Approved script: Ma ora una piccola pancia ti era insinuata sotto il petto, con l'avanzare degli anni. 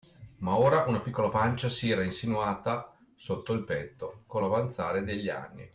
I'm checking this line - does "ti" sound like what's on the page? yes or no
no